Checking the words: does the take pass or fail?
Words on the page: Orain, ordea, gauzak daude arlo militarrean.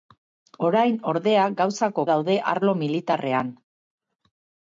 pass